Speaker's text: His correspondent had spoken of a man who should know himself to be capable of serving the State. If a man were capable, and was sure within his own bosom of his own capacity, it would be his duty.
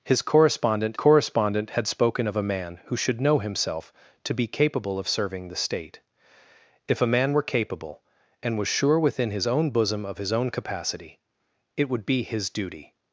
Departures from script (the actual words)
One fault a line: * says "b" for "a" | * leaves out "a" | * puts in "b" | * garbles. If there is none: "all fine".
* puts in "correspondent"